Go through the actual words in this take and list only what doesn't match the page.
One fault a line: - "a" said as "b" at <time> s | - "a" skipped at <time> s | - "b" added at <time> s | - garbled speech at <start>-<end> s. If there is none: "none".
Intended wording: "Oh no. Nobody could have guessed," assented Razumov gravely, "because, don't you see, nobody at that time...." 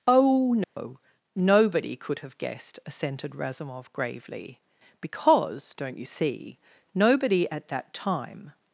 none